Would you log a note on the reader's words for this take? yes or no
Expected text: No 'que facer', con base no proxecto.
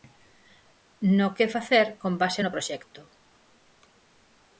no